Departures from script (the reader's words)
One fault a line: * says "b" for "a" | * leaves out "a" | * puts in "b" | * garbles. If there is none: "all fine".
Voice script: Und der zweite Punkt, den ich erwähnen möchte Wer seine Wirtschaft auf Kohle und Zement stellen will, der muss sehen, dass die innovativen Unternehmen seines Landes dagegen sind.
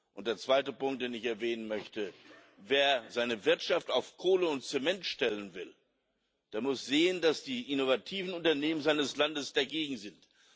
all fine